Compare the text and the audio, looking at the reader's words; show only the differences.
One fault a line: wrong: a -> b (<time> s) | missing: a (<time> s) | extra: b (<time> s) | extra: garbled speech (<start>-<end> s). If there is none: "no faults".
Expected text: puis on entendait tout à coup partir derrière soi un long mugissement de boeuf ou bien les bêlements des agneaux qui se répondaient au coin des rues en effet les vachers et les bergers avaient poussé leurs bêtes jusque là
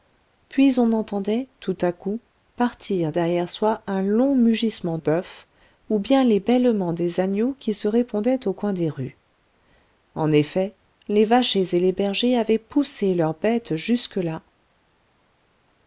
missing: de (5.0 s)